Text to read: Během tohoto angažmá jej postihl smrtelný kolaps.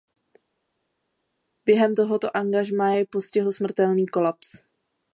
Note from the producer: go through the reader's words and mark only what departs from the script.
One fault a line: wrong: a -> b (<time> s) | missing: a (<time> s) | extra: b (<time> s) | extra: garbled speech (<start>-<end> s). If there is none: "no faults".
no faults